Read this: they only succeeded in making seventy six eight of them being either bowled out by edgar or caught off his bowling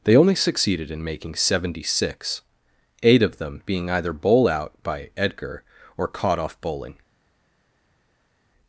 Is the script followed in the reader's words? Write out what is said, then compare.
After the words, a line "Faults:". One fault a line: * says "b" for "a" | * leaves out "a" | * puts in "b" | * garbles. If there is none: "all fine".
they only succeeded in making seventy six eight of them being either bowl out by edgar or caught off bowling
Faults:
* says "bowl" for "bowled"
* leaves out "his"